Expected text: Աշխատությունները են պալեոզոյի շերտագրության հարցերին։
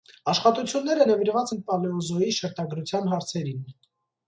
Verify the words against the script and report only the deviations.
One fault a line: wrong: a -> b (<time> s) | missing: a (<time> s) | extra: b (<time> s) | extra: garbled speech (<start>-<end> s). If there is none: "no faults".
extra: նվիրված (1.1 s)